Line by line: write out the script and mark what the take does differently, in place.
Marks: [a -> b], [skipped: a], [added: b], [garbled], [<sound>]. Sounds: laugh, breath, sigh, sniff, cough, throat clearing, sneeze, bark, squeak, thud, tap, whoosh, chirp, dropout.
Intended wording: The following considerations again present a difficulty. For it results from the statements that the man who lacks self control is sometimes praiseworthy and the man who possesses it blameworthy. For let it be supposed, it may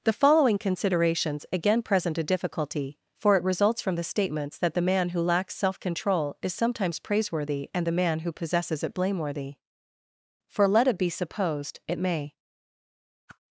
The following considerations again present a difficulty. For it results from the statements that the man who lacks self control is sometimes praiseworthy and the man who possesses it blameworthy. For let it be supposed, it may [whoosh]